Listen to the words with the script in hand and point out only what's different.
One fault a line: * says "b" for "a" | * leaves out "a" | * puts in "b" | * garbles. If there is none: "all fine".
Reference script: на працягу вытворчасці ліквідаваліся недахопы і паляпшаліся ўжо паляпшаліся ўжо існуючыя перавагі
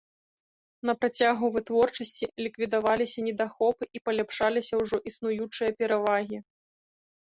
* leaves out "паляпшаліся ўжо"